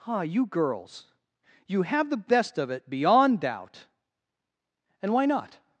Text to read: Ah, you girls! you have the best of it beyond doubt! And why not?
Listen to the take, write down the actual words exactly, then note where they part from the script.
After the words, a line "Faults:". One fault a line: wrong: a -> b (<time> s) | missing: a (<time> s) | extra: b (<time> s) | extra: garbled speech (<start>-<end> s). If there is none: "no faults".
Ah, you girls! you have the best of it beyond doubt! And why not?
Faults:
no faults